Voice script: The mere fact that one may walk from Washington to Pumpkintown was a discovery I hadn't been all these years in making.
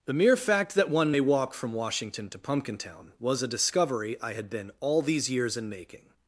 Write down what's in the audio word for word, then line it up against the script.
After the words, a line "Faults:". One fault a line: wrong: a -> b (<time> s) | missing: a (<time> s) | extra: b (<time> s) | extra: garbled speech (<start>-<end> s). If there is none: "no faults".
The mere fact that one may walk from Washington to Pumpkintown was a discovery I had been all these years in making.
Faults:
wrong: hadn't -> had (4.3 s)